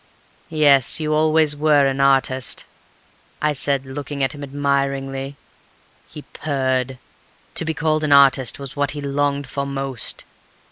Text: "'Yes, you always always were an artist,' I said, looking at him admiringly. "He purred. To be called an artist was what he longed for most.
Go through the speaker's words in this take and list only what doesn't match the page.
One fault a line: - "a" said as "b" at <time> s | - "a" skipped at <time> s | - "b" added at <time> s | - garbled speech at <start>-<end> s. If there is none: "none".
- "always" skipped at 1.6 s